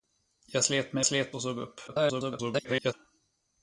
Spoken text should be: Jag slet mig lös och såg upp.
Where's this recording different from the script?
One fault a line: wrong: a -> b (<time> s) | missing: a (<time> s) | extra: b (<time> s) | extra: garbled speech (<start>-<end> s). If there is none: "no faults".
wrong: lös -> slet (1.0 s)
extra: garbled speech (1.9-2.9 s)